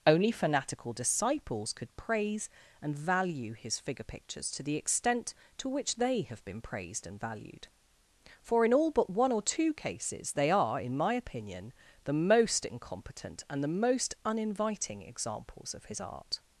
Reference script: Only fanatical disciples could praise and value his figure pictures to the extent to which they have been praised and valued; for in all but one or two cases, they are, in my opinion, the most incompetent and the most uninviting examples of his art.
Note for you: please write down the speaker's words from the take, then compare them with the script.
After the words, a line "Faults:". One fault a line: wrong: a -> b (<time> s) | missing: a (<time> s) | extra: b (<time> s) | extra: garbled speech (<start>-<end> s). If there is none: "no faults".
Only fanatical disciples could praise and value his figure pictures to the extent to which they have been praised and valued; for in all but one or two cases, they are, in my opinion, the most incompetent and the most uninviting examples of his art.
Faults:
no faults